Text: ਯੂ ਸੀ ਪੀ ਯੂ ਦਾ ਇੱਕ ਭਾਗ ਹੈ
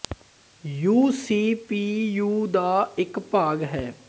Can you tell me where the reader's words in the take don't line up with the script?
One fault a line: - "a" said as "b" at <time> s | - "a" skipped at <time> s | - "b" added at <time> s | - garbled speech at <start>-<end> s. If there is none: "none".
none